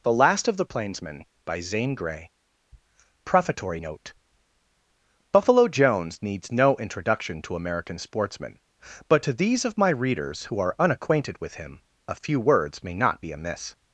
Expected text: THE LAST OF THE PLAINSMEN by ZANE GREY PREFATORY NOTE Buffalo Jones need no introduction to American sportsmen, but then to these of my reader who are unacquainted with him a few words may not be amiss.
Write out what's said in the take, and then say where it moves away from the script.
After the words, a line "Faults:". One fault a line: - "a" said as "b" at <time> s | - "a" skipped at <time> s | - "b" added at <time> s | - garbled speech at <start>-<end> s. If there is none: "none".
THE LAST OF THE PLAINSMEN by ZANE GREY PREFATORY NOTE Buffalo Jones needs no introduction to American sportsmen, but to these of my readers who are unacquainted with him a few words may not be amiss.
Faults:
- "need" said as "needs" at 6.2 s
- "then" skipped at 9.2 s
- "reader" said as "readers" at 9.9 s